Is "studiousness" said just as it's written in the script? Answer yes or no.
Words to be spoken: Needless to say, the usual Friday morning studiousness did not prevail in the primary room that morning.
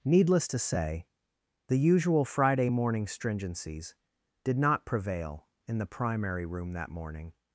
no